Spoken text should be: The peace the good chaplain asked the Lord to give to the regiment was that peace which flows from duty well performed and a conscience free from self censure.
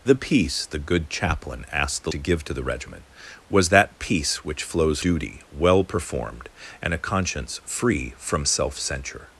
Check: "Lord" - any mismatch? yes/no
yes